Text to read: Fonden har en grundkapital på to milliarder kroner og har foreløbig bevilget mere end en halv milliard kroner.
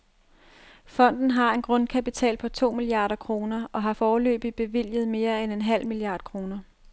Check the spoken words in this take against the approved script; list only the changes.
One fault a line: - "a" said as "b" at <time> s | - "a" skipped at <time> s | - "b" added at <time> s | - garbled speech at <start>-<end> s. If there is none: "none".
none